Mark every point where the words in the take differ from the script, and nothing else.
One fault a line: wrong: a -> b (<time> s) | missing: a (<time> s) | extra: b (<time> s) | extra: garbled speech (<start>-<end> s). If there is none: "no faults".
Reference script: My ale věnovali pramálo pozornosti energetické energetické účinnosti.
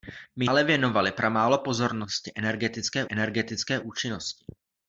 no faults